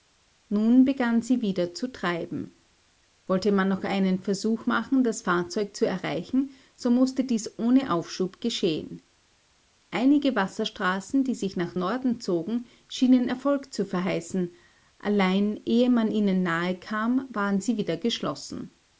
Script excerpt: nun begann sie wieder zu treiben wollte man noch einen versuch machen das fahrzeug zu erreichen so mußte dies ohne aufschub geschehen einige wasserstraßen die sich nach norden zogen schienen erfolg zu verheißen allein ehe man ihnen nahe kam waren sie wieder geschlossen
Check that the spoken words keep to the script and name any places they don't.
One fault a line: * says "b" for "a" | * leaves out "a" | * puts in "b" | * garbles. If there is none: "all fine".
all fine